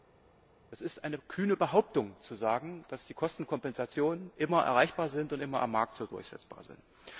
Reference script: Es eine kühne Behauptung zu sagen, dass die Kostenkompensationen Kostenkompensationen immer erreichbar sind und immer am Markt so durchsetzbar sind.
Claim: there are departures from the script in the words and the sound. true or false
true